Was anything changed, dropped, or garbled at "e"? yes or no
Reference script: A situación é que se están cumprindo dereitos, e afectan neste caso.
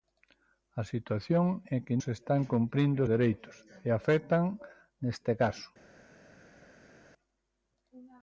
no